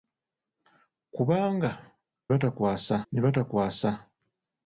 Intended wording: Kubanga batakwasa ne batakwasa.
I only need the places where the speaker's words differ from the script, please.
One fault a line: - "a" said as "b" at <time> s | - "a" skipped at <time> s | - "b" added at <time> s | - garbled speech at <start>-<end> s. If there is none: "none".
none